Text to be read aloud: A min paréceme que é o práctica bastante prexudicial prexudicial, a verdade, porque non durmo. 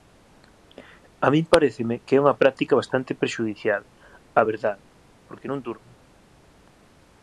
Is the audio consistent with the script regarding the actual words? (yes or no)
no